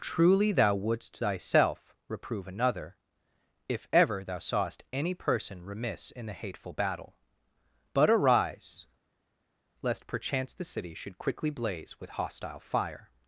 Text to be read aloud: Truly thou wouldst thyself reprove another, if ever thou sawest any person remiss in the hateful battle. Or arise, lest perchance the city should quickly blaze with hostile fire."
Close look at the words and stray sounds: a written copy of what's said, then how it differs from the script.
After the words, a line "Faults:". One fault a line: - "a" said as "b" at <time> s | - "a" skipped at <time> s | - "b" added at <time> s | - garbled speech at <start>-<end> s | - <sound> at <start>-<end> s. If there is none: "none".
Truly thou wouldst thyself reprove another, if ever thou sawest any person remiss in the hateful battle. But arise, lest perchance the city should quickly blaze with hostile fire."
Faults:
- "Or" said as "But" at 7.9 s